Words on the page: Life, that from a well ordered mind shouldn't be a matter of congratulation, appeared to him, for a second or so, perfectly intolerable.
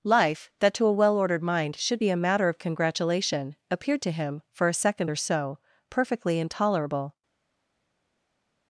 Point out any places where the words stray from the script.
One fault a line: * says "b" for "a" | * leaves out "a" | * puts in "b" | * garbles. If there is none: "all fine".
* says "to" for "from"
* says "should" for "shouldn't"